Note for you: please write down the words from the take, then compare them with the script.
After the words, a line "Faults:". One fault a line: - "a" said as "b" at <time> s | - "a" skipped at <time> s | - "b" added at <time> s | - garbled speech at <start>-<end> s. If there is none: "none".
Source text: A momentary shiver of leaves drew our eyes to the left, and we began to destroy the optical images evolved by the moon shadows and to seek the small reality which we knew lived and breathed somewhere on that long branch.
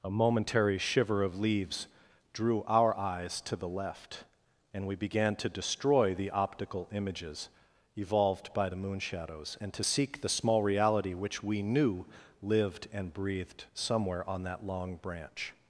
A momentary shiver of leaves drew our eyes to the left, and we began to destroy the optical images evolved by the moon shadows and to seek the small reality which we knew lived and breathed somewhere on that long branch.
Faults:
none